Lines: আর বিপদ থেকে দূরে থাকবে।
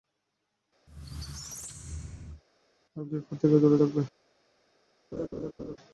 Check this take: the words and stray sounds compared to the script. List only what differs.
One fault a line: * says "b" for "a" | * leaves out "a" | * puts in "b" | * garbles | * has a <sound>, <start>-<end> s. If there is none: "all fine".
* has a squeak, 0.9-2.4 s
* has a laugh, 5.1-5.8 s